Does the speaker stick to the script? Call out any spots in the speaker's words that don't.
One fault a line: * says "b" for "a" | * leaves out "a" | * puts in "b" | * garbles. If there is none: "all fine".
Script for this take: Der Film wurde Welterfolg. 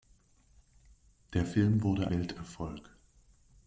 all fine